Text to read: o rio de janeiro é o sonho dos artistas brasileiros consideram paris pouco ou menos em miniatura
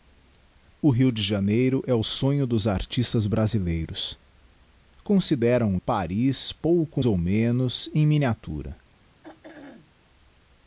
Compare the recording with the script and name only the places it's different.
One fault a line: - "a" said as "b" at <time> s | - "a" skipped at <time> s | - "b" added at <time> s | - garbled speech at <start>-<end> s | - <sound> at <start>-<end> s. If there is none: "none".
- throat clearing at 9.2-9.9 s